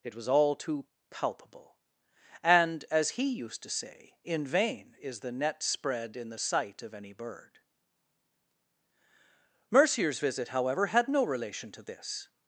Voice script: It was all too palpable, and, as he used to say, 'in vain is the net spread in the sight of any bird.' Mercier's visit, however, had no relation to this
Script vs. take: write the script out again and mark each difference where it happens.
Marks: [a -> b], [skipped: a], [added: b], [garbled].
It was all too palpable, and, as he used to say, 'in vain is the net spread in the sight of any bird.' Mercier's visit, however, had no relation to this